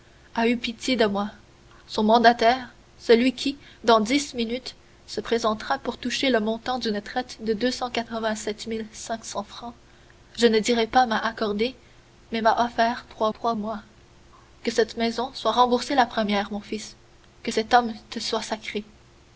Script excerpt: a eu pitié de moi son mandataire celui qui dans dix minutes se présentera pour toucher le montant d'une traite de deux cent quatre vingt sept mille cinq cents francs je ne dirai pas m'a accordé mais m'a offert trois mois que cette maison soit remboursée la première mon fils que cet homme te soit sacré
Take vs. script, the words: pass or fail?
fail